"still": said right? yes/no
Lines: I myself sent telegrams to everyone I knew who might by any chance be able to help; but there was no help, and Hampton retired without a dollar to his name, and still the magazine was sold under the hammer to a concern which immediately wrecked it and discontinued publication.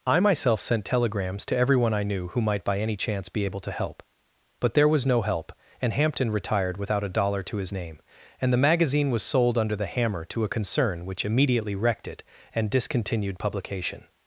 no